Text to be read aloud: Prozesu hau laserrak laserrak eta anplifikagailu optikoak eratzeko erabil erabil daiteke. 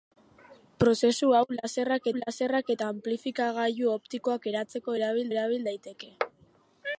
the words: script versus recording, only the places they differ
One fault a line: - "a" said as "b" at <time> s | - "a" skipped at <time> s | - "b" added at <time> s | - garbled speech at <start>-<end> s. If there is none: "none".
none